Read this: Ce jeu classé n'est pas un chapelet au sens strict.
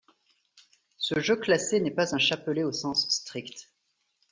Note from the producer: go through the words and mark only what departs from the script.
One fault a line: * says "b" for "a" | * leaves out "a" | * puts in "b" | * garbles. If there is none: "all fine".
all fine